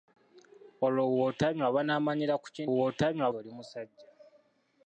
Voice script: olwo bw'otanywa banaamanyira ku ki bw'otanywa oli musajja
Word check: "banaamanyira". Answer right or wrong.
right